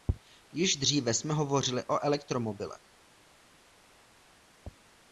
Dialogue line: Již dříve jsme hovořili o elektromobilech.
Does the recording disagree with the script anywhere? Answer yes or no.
no